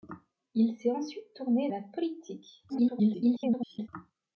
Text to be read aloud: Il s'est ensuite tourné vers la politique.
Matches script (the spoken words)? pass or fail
fail